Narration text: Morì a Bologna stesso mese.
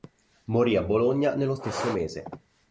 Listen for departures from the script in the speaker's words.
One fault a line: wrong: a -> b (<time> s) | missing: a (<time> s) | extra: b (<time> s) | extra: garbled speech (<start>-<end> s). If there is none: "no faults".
extra: nello (1.4 s)